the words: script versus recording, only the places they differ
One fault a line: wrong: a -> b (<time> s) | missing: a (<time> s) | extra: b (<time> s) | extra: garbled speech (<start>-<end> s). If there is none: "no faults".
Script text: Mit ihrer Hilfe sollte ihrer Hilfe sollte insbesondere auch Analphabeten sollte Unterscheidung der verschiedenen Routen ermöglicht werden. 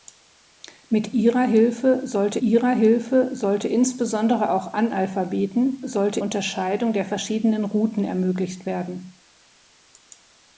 no faults